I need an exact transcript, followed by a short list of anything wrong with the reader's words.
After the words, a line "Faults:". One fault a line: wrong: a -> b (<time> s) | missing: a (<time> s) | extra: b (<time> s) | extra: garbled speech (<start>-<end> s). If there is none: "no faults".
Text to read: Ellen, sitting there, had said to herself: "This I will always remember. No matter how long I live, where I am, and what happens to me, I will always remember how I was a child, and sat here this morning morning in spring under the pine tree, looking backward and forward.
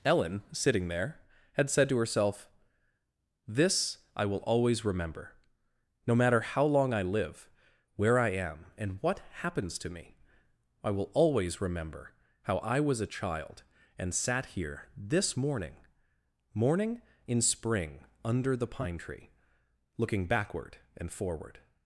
Ellen, sitting there, had said to herself: "This I will always remember. No matter how long I live, where I am, and what happens to me, I will always remember how I was a child, and sat here this morning morning in spring under the pine tree, looking backward and forward.
Faults:
no faults